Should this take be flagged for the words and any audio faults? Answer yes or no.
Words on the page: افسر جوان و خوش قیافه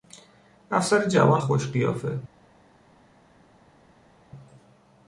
yes